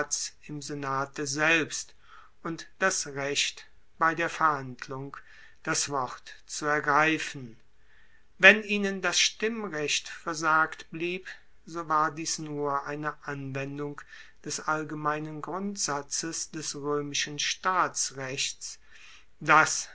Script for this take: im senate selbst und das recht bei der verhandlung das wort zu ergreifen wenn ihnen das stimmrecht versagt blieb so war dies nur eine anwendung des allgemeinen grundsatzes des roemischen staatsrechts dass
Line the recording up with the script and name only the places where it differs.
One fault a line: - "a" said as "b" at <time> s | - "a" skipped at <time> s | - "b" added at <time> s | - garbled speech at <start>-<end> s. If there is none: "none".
none